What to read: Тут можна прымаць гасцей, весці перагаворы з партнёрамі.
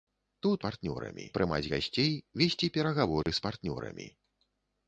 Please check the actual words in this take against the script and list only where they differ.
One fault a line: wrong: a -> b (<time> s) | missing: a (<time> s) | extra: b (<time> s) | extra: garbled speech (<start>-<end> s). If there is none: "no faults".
wrong: можна -> партнёрамі (0.7 s)